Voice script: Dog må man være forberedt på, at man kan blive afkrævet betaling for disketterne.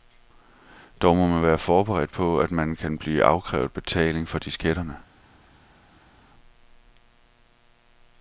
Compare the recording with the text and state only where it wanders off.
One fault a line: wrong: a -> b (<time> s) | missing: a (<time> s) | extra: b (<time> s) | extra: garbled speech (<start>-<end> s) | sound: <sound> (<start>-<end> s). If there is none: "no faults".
no faults